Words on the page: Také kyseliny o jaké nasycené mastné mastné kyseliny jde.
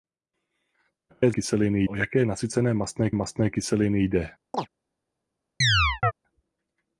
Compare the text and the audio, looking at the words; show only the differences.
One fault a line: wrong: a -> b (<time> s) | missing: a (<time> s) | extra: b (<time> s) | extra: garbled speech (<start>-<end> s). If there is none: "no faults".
no faults